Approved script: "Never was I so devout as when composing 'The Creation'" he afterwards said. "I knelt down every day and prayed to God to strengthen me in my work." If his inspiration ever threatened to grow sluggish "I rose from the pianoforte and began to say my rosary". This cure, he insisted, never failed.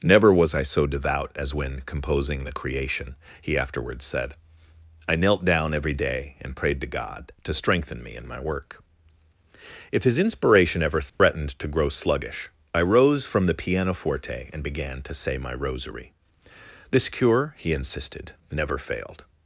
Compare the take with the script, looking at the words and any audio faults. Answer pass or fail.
fail